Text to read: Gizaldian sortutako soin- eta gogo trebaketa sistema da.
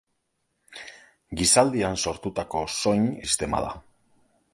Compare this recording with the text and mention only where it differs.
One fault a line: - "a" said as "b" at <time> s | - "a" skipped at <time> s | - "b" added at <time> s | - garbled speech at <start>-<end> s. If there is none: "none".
- "eta gogo trebaketa" skipped at 3.1 s